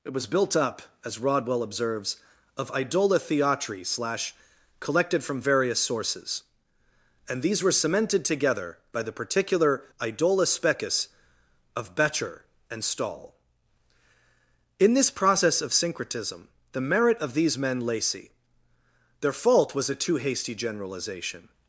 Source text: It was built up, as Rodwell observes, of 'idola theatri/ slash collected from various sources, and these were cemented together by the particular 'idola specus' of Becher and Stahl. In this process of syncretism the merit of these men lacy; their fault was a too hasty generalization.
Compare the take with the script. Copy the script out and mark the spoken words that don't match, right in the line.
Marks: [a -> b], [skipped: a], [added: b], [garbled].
It was built up, as Rodwell observes, of 'idola theatri/ slash collected from various sources, and these were cemented together by the particular 'idola specus' of Becher and Stahl. In this process of syncretism the merit of these men lacy; their fault was a too hasty generalization.